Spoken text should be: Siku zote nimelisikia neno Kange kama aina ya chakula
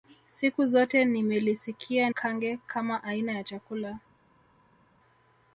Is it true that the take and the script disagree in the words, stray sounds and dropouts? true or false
true